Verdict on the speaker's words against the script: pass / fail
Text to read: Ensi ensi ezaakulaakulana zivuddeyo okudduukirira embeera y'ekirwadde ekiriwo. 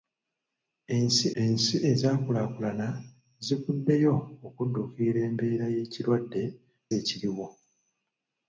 pass